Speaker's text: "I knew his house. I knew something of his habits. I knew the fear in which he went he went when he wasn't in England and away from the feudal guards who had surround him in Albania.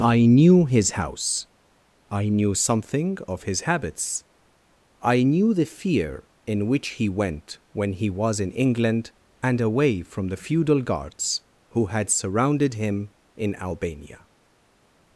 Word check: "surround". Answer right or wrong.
wrong